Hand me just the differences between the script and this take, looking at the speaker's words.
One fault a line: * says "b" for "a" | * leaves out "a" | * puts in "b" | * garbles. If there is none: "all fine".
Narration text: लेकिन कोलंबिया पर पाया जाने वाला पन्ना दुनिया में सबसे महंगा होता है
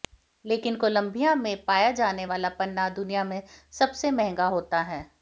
* says "में" for "पर"